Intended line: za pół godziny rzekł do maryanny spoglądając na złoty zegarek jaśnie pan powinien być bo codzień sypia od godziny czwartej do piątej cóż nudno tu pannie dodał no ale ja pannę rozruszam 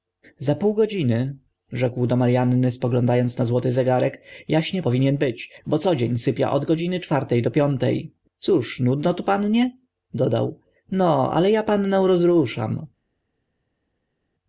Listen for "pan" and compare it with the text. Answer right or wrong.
wrong